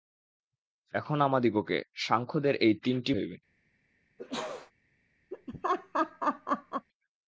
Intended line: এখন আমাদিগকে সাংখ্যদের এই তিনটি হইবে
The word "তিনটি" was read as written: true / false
true